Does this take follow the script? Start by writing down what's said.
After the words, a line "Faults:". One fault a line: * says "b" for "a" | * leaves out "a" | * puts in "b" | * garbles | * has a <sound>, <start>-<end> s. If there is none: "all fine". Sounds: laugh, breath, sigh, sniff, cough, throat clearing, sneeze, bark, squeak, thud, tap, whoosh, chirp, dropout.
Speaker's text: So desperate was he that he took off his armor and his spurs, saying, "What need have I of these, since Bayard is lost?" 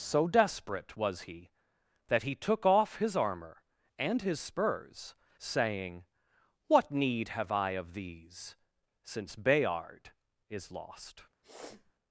So desperate was he that he took off his armor and his spurs, saying, "What need have I of these, since Bayard is lost?"
Faults:
* has a sniff, 11.4-11.9 s